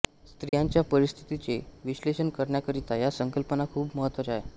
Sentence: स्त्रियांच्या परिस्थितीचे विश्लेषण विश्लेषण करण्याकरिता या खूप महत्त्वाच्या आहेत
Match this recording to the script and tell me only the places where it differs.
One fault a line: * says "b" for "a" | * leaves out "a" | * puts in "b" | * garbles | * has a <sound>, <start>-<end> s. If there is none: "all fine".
* has a dropout, 0.5-0.5 s
* leaves out "विश्लेषण"
* puts in "संकल्पना"